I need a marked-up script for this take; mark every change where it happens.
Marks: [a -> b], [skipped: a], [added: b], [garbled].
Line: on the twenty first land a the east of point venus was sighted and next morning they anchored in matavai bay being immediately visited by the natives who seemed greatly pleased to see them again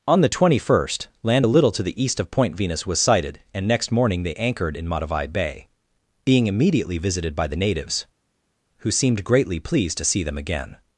on the twenty first land a [added: little to] the east of point venus was sighted and next morning they anchored in matavai bay being immediately visited by the natives who seemed greatly pleased to see them again